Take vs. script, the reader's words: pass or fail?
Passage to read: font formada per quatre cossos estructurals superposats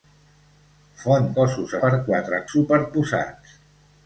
fail